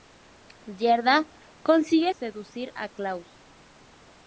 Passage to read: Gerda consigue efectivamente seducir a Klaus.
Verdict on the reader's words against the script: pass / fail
fail